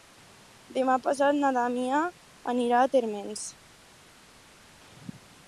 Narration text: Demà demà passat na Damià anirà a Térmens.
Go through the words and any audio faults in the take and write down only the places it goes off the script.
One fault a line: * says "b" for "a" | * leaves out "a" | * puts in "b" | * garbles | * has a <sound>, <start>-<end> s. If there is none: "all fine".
* leaves out "demà"